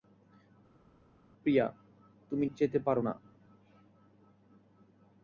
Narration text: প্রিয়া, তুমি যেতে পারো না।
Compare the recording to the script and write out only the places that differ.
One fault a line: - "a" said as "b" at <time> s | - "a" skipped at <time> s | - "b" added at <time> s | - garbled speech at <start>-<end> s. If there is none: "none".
none